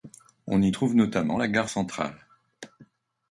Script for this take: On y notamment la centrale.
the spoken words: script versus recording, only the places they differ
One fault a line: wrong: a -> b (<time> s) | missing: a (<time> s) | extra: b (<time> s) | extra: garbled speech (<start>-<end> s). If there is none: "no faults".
extra: trouve (0.7 s)
extra: gare (1.5 s)